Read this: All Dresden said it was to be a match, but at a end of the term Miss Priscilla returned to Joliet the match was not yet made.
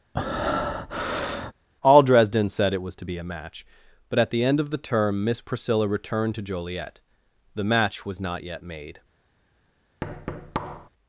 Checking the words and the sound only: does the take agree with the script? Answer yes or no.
no